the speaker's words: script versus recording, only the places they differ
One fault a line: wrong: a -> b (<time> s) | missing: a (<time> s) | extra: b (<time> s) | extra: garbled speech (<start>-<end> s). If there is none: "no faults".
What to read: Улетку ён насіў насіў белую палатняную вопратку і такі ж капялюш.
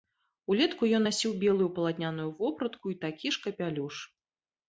missing: насіў (1.3 s)